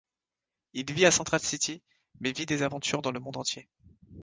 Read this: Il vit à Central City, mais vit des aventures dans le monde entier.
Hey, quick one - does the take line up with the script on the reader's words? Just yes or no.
yes